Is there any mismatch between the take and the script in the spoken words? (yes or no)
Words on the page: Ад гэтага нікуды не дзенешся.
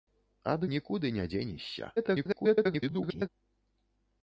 yes